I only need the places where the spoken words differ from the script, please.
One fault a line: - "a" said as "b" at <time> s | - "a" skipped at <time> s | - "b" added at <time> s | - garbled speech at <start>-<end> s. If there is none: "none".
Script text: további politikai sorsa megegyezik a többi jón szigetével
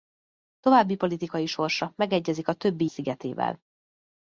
- "jón" skipped at 2.9 s